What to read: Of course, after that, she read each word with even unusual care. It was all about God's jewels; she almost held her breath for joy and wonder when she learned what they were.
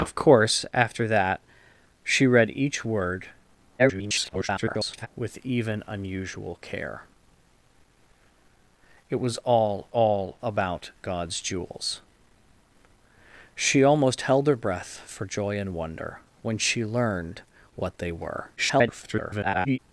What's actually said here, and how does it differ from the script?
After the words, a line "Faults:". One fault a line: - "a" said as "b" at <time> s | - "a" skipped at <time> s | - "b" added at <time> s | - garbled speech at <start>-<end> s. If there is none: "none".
Of course, after that, she read each word [garbled] with even unusual care. It was all all about God's jewels; she almost held her breath for joy and wonder when she learned what they were. [garbled]
Faults:
- garbled speech at 3.8-5.1 s
- "all" added at 9.9 s
- garbled speech at 18.6-19.8 s